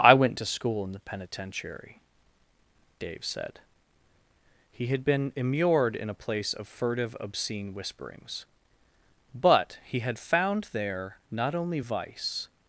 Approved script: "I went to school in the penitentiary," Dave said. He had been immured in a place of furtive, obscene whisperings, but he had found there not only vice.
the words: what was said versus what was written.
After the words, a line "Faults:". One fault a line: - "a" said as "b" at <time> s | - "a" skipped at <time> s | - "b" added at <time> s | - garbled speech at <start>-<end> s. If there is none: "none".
"I went to school in the penitentiary," Dave said. He had been immured in a place of furtive, obscene whisperings, but he had found there not only vice.
Faults:
none